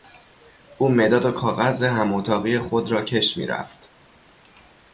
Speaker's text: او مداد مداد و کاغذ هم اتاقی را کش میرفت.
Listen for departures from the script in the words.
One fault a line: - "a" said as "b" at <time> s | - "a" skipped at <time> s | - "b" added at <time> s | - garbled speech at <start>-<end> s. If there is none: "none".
- "مداد" skipped at 1.2 s
- "خود" added at 2.6 s